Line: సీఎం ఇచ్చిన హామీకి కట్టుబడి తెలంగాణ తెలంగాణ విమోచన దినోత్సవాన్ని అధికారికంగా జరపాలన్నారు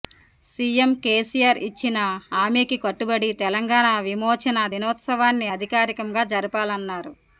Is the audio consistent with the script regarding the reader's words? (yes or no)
no